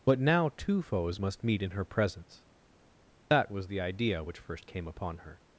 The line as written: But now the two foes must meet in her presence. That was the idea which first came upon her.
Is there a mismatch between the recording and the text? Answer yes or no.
yes